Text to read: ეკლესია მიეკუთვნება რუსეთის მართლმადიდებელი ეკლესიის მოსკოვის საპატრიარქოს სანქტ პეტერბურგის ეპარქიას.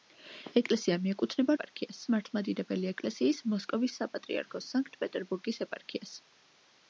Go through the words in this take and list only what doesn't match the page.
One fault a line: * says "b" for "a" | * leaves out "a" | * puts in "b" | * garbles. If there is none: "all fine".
* says "ეპარქიას" for "რუსეთის"